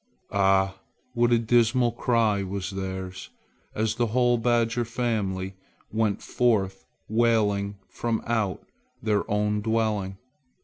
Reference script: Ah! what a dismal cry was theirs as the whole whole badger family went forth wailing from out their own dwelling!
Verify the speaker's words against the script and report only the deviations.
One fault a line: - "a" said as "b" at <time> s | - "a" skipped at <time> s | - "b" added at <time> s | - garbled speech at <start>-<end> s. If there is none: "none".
- "whole" skipped at 4.4 s